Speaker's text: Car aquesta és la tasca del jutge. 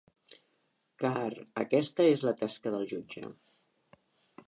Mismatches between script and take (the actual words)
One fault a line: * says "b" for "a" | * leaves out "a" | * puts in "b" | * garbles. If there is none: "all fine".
all fine